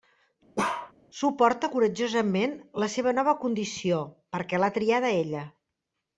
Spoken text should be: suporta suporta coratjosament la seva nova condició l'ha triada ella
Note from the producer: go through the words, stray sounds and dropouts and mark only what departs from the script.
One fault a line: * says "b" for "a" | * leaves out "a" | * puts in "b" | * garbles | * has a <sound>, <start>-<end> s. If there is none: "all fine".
* has a bark, 0.6-0.9 s
* leaves out "suporta"
* puts in "perquè"